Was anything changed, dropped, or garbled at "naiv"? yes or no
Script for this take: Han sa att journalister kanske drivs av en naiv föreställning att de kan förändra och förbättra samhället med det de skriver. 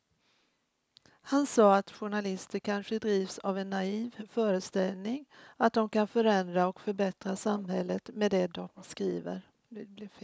no